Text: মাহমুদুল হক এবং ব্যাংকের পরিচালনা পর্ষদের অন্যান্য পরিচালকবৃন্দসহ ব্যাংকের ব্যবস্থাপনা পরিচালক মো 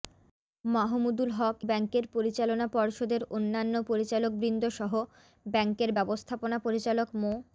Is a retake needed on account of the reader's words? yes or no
yes